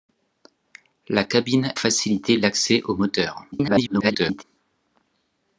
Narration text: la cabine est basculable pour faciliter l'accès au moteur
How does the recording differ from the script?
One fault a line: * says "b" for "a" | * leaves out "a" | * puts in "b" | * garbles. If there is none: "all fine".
* leaves out "est basculable pour"
* garbles